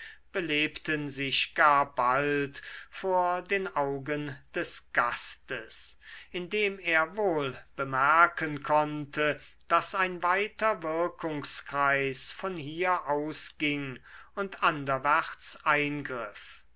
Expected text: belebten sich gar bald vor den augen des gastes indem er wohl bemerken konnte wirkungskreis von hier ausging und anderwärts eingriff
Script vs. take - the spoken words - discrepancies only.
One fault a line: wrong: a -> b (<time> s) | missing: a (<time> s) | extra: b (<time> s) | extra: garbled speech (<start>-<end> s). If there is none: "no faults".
extra: daß ein weiter (9.7 s)